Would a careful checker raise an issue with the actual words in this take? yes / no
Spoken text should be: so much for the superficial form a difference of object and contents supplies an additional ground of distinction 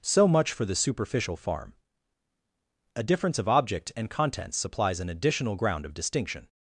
yes